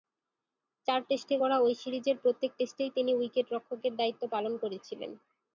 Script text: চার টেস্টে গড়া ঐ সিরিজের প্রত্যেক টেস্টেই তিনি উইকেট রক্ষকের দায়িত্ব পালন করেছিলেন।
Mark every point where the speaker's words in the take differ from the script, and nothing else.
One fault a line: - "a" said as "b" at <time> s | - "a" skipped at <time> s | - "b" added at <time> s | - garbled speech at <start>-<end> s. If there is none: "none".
none